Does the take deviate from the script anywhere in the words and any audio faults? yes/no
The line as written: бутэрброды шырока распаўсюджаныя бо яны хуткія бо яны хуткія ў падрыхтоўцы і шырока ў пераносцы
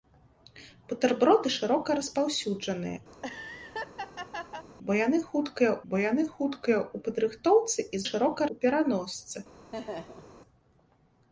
yes